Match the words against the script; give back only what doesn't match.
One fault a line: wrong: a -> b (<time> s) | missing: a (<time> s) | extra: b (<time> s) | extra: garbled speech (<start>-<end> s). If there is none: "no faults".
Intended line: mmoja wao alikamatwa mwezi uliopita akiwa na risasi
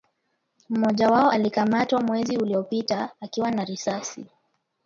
no faults